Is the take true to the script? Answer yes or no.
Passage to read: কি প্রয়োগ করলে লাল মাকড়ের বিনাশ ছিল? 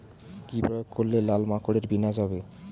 no